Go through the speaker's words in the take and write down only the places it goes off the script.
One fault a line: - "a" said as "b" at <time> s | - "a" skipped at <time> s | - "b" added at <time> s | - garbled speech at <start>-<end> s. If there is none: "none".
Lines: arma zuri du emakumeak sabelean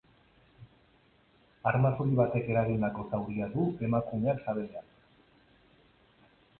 - "batek eragindako zauria" added at 2.2 s